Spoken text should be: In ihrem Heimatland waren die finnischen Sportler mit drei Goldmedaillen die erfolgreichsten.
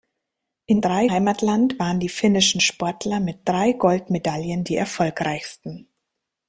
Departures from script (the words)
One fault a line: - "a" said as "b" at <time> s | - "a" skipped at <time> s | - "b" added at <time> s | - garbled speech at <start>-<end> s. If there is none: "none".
- "ihrem" said as "drei" at 0.8 s